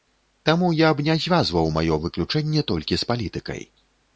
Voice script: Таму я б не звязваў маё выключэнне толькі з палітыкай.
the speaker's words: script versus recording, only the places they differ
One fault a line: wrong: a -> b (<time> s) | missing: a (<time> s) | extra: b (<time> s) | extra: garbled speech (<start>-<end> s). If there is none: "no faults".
no faults